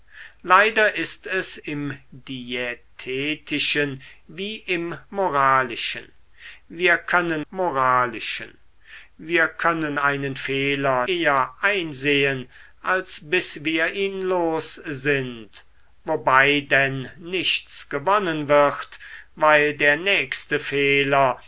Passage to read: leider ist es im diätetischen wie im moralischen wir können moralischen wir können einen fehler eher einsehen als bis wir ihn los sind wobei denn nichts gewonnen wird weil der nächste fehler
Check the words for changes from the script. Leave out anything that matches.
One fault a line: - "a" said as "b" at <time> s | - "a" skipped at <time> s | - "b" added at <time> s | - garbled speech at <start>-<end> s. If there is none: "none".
none